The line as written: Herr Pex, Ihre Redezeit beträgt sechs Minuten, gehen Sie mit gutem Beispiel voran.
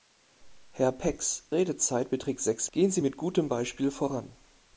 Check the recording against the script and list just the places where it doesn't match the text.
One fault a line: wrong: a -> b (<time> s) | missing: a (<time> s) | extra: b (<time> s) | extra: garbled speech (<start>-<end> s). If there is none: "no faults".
missing: Ihre (1.4 s)
missing: Minuten (2.7 s)